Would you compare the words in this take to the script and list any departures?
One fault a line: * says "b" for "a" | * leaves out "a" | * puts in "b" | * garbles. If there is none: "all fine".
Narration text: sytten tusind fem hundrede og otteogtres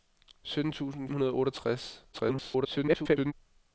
* leaves out "fem"
* garbles